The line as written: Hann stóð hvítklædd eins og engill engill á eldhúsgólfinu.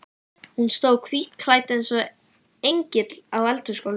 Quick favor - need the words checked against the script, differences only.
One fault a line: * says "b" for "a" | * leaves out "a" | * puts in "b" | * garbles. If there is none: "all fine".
* says "Hún" for "Hann"
* leaves out "engill"